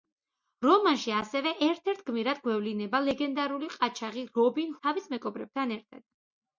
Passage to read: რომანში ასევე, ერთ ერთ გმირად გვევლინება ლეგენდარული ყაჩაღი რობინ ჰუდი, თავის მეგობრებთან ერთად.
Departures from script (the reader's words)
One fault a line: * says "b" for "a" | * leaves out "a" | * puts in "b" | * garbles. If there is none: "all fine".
* leaves out "ჰუდი"